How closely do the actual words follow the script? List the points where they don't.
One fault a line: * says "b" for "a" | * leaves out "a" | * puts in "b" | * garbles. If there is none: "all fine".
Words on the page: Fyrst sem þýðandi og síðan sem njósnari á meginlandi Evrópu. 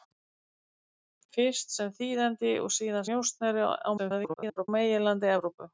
* leaves out "sem"
* garbles